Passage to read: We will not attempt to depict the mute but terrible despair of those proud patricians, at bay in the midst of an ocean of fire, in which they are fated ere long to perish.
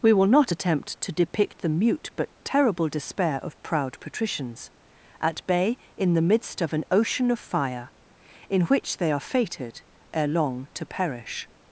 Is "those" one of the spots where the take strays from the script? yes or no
yes